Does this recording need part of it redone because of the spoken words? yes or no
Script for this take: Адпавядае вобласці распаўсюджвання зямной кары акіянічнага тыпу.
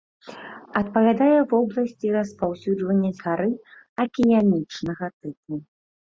yes